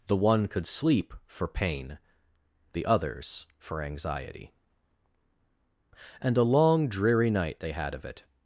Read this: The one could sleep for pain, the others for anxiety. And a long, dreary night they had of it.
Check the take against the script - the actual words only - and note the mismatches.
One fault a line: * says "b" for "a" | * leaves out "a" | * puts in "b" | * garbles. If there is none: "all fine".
all fine